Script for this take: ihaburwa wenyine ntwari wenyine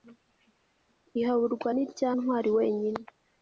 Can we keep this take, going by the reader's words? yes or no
no